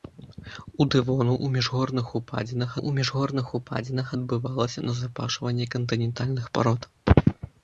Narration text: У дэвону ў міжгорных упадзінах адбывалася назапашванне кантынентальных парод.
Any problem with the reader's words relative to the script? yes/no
yes